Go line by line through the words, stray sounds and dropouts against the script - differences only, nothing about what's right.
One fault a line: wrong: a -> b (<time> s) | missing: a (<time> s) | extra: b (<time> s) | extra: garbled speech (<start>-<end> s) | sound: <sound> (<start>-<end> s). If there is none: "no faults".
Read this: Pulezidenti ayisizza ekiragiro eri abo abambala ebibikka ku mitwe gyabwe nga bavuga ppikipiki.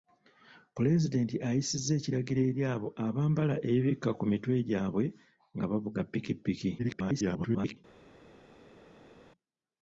extra: garbled speech (6.8-7.8 s)